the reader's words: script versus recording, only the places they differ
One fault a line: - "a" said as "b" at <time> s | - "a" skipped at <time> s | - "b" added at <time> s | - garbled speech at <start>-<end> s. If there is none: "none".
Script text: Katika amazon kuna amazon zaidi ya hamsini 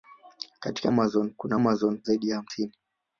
none